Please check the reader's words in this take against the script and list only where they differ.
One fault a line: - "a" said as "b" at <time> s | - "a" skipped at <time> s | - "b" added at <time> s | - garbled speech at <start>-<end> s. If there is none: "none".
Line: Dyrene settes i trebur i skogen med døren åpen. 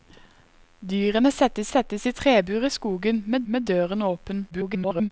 - "settes" added at 1.6 s
- "med" added at 3.5 s
- garbled speech at 4.5-5.1 s